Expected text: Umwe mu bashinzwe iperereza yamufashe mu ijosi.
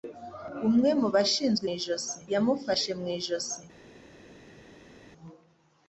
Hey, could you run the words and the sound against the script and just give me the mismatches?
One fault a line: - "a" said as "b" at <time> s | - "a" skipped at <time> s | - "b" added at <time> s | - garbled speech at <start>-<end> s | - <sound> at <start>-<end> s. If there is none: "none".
- "iperereza" said as "ijosi" at 1.7 s